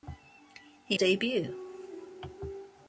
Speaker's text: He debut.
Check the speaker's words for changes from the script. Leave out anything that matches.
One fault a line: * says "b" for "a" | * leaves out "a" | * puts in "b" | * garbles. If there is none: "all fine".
all fine